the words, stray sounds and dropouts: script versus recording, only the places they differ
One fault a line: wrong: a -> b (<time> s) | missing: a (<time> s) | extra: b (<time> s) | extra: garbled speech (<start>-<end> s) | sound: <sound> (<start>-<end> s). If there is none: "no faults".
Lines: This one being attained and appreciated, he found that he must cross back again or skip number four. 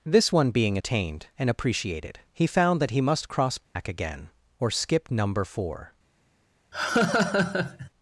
sound: dropout (3.6-3.8 s)
sound: laugh (6.7-7.9 s)